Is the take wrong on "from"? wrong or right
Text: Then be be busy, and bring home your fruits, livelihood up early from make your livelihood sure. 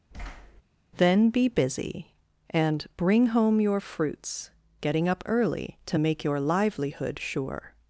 wrong